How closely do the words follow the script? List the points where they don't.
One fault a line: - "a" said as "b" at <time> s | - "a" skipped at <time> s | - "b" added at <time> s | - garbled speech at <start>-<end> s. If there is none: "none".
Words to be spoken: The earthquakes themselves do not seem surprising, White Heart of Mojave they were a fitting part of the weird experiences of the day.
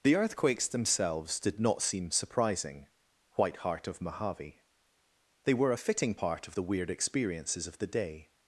- "do" said as "did" at 1.4 s